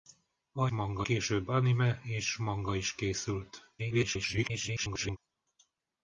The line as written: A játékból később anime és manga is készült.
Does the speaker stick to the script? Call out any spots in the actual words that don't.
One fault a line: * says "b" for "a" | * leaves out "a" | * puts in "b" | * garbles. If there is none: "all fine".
* says "manga" for "játékból"
* garbles